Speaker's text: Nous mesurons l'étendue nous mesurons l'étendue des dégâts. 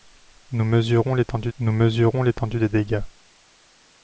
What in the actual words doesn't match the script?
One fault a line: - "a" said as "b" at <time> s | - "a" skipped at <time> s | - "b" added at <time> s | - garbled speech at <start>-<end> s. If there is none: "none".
none